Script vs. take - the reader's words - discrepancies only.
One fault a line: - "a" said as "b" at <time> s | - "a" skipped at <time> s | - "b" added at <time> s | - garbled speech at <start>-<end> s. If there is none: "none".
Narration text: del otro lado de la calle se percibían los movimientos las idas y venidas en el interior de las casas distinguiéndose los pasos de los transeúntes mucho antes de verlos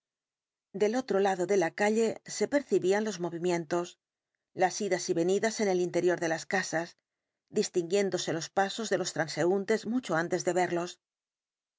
none